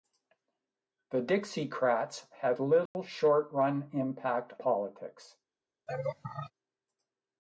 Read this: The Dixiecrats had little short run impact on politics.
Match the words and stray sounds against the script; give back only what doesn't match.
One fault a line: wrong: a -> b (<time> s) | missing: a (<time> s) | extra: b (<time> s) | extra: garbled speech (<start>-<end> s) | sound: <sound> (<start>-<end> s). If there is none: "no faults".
sound: dropout (2.9-2.9 s)
missing: on (4.5 s)
sound: laugh (5.9-6.5 s)